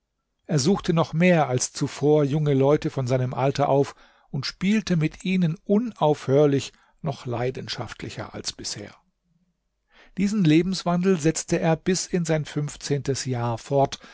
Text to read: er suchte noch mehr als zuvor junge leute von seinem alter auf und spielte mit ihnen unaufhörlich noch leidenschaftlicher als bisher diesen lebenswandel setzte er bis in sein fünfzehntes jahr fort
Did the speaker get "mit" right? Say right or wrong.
right